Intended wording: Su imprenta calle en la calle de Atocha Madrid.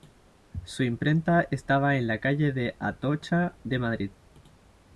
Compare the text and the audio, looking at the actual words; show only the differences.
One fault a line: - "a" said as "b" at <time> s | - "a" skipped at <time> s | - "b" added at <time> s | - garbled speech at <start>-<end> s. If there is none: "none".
- "calle" said as "estaba" at 1.5 s
- "de" added at 3.6 s